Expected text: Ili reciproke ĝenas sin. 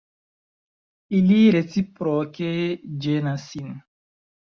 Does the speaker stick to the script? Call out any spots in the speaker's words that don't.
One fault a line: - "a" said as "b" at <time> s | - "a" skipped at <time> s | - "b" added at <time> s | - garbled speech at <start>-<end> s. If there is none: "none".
none